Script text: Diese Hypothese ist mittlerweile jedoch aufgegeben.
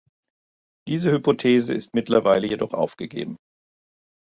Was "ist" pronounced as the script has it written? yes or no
yes